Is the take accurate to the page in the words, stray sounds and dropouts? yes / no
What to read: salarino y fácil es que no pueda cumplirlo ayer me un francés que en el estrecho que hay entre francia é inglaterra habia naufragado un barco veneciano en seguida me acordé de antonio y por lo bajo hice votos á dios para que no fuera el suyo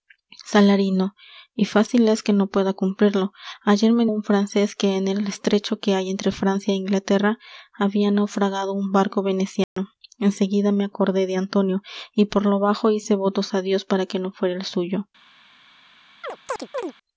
no